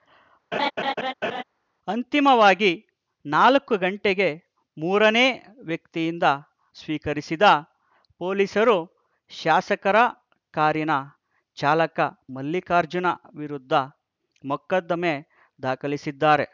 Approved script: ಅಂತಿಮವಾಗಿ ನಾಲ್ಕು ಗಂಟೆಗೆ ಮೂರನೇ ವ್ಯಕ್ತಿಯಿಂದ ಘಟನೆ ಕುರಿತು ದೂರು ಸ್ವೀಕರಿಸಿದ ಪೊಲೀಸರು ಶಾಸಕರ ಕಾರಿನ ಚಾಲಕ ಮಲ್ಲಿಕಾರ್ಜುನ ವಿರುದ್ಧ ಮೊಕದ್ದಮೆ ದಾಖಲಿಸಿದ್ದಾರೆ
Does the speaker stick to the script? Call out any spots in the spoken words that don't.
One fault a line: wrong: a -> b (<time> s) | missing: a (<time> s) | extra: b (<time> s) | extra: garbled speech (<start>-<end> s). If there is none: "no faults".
missing: ಘಟನೆ ಕುರಿತು ದೂರು (6.3 s)